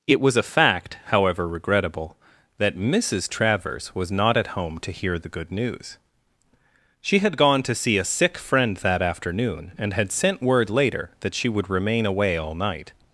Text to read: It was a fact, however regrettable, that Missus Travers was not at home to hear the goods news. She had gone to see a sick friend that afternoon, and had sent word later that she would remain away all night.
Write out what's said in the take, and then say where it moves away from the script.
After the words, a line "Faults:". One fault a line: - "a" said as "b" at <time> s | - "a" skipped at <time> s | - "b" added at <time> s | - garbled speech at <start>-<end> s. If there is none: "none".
It was a fact, however regrettable, that Missus Travers was not at home to hear the good news. She had gone to see a sick friend that afternoon, and had sent word later that she would remain away all night.
Faults:
- "goods" said as "good" at 5.3 s